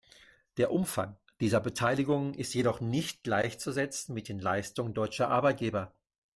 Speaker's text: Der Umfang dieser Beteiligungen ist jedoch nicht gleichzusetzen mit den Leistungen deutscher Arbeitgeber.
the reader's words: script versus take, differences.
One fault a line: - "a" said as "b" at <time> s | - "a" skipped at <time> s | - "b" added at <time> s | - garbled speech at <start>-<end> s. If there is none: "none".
none